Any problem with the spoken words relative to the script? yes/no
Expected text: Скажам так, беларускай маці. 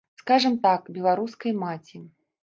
no